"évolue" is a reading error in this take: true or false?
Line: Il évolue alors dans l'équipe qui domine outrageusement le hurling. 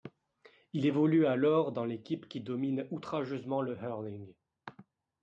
false